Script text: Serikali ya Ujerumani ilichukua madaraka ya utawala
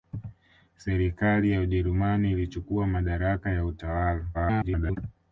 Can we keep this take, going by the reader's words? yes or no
no